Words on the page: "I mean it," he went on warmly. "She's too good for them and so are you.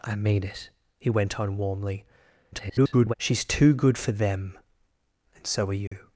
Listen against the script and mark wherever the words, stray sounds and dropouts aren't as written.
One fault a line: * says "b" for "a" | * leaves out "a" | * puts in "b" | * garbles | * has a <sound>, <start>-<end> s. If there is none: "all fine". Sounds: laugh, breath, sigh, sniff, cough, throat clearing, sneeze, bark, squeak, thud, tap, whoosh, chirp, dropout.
* garbles
* has a dropout, 5.9-5.9 s